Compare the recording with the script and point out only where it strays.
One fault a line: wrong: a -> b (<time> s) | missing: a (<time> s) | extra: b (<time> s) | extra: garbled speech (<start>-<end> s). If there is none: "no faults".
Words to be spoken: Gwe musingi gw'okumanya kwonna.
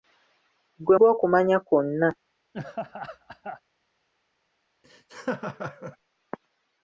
missing: musingi (1.0 s)